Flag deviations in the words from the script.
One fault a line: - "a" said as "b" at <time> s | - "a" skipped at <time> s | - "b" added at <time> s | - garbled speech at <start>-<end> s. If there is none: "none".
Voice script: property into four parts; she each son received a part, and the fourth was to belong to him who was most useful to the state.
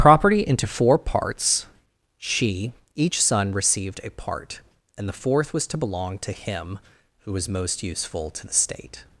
none